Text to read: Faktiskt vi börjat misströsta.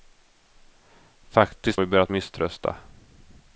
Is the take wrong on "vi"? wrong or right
right